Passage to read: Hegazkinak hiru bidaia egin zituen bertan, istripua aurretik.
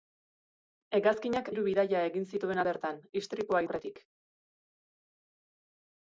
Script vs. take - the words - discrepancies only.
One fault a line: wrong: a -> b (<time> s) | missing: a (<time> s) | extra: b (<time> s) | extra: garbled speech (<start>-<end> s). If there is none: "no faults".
no faults